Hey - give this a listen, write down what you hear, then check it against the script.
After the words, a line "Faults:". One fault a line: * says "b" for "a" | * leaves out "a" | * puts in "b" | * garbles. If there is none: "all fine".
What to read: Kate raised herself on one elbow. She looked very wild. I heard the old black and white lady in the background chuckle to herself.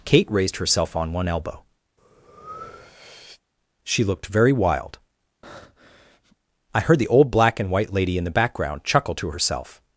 Kate raised herself on one elbow. She looked very wild. I heard the old black and white lady in the background chuckle to herself.
Faults:
all fine